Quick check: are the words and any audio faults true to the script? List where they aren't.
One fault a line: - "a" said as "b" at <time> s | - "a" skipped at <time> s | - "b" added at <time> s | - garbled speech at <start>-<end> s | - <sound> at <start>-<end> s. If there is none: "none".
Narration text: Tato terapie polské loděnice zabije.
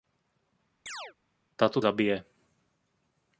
- chirp at 0.9-1.1 s
- "terapie polské loděnice" skipped at 1.8 s